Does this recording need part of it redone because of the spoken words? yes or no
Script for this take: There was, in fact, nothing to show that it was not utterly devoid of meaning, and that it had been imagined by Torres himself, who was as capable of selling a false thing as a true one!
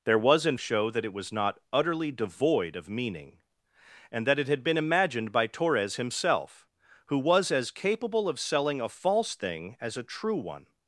yes